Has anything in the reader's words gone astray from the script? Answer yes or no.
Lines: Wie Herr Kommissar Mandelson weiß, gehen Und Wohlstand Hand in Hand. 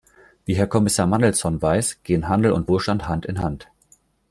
yes